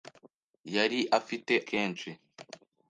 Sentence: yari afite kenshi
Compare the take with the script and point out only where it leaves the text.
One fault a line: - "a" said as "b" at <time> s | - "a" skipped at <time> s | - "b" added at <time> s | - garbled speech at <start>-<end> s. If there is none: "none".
none